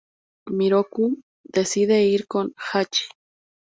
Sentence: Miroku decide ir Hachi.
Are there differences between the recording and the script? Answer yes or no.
yes